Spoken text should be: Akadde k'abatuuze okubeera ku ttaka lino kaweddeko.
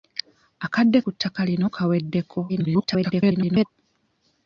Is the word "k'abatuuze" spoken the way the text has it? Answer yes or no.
no